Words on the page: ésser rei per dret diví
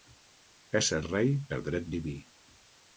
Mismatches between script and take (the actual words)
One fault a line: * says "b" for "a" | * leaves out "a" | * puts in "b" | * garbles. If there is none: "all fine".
all fine